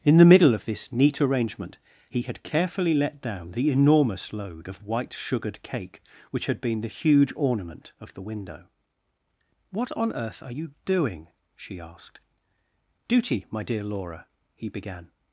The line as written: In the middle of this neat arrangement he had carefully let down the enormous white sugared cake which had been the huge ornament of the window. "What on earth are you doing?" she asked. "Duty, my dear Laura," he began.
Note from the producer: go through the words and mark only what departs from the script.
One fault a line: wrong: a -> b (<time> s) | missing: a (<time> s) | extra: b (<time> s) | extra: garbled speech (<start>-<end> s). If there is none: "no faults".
extra: load of (4.3 s)